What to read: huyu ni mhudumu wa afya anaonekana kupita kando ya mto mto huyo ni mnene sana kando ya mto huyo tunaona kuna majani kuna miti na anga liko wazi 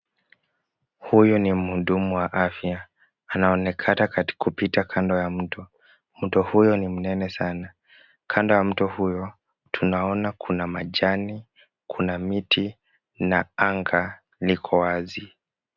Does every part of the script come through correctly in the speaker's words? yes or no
yes